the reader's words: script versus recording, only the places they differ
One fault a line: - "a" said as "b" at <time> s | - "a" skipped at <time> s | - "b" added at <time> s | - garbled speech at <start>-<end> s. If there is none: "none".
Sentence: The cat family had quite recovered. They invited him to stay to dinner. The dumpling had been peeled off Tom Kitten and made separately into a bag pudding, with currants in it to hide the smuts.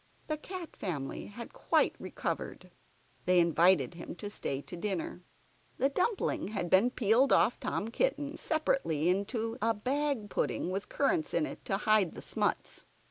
- "and made" skipped at 8.4 s